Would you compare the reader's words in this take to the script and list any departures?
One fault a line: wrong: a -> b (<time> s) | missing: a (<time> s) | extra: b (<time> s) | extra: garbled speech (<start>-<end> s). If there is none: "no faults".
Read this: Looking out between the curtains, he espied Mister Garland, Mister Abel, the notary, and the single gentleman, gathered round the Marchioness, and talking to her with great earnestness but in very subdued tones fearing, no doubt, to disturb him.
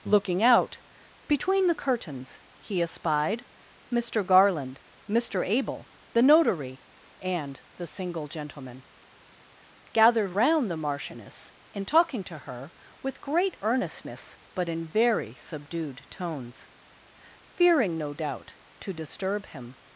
no faults